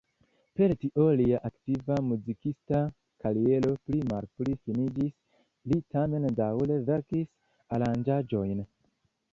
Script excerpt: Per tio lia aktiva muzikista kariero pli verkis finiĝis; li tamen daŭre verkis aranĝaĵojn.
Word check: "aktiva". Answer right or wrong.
right